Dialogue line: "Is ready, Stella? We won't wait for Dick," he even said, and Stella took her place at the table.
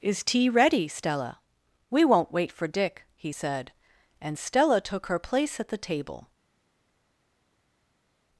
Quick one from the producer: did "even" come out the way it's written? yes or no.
no